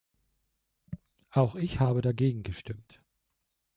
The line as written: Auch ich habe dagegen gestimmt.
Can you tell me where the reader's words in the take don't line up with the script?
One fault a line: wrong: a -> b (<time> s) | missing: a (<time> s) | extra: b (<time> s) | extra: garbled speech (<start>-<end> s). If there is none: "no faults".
no faults